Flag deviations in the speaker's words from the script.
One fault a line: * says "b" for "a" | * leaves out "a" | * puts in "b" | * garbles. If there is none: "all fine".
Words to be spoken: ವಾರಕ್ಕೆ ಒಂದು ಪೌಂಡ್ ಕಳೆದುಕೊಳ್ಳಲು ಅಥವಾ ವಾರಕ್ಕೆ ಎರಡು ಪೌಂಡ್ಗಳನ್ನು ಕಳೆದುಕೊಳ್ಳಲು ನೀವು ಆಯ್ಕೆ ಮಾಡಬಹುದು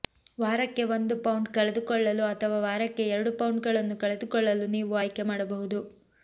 all fine